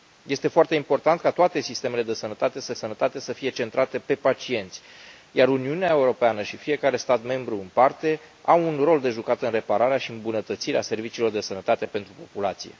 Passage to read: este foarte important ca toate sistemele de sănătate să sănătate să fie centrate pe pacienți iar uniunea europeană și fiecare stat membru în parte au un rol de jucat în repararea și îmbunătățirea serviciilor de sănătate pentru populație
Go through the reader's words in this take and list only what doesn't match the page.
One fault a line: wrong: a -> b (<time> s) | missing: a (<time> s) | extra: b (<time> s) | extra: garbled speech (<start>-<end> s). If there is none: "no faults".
no faults